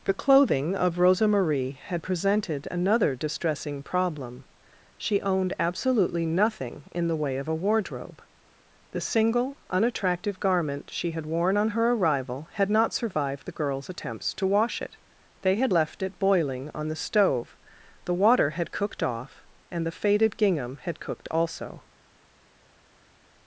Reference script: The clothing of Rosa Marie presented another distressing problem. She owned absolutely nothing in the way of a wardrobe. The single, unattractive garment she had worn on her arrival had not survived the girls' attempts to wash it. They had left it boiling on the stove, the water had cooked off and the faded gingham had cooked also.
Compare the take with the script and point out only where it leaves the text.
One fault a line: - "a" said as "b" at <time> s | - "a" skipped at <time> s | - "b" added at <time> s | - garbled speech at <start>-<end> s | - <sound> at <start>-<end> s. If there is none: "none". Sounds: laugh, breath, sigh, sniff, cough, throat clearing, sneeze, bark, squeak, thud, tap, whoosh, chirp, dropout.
- "had" added at 1.8 s